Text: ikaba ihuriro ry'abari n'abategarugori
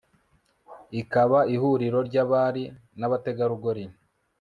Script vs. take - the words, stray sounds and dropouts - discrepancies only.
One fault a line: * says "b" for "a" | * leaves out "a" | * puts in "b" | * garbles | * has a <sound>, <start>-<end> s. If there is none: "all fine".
all fine